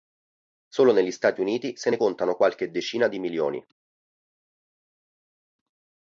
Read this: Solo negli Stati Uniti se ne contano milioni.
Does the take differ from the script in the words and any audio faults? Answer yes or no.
yes